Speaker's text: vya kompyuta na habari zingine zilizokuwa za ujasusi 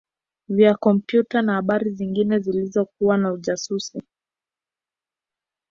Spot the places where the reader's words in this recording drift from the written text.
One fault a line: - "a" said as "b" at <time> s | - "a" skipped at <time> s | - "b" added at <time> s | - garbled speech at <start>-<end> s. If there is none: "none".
none